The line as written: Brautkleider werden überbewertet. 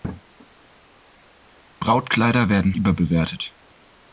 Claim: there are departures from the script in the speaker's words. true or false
false